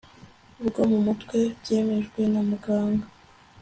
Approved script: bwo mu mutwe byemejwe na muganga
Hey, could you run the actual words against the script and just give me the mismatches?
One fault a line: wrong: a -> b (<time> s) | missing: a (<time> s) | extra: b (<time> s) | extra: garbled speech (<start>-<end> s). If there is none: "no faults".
no faults